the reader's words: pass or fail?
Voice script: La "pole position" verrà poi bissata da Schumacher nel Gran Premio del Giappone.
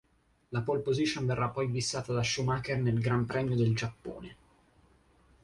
pass